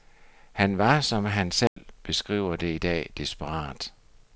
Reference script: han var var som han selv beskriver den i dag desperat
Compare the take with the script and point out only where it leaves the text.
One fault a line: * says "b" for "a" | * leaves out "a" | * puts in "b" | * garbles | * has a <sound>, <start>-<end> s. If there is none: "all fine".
* leaves out "var"
* has a dropout, 1.7-1.8 s
* says "det" for "den"